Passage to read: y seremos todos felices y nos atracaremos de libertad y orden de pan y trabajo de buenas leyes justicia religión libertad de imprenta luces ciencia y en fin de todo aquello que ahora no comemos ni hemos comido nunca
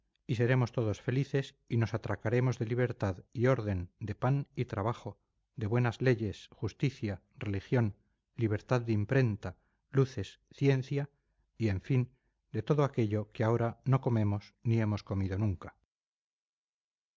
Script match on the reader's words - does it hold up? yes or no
yes